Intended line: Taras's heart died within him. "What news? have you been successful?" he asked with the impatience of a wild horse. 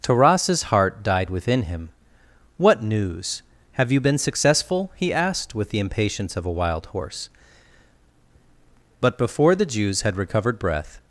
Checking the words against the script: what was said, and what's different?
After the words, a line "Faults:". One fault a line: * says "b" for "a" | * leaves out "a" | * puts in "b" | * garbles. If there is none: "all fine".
Taras's heart died within him. "What news? have you been successful?" he asked with the impatience of a wild horse. But before the Jews had recovered breath
Faults:
* puts in "But before the Jews had recovered breath"